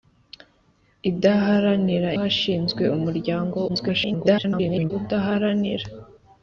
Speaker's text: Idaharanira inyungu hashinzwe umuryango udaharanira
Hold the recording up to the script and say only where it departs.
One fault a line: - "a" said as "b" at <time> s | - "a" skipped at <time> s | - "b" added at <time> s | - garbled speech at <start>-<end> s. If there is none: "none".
- "inyungu" skipped at 2.1 s
- garbled speech at 3.7-4.9 s